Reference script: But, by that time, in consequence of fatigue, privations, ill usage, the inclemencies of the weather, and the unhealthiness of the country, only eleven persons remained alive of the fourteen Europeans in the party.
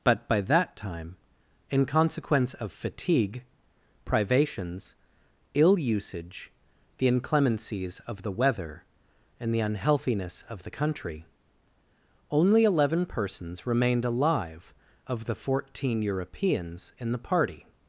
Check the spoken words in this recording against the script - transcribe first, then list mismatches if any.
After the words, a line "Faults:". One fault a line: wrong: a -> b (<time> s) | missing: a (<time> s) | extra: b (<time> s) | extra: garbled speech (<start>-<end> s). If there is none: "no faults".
But, by that time, in consequence of fatigue, privations, ill usage, the inclemencies of the weather, and the unhealthiness of the country, only eleven persons remained alive of the fourteen Europeans in the party.
Faults:
no faults